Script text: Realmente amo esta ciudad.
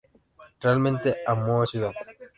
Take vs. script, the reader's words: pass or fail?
fail